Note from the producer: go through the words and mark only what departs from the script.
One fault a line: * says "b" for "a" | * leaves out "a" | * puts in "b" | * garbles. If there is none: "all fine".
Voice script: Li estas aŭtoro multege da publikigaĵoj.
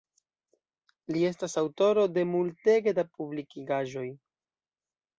* puts in "de"